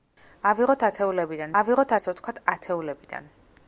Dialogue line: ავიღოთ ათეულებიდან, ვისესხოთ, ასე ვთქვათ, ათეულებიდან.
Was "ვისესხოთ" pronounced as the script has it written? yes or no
no